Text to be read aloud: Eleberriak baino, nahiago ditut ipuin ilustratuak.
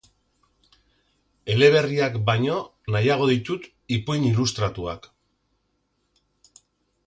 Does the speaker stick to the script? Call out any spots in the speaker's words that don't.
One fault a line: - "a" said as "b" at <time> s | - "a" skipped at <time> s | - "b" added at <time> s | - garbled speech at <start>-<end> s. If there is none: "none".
none